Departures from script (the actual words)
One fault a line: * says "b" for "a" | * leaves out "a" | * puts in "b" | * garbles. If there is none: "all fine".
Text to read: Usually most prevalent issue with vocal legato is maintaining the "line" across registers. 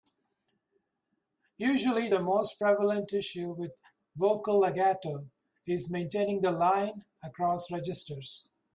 * puts in "the"